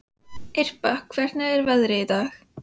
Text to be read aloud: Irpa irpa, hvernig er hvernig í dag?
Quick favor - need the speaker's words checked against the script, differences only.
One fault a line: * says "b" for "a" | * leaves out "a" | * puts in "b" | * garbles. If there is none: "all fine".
* leaves out "irpa"
* says "veðrið" for "hvernig"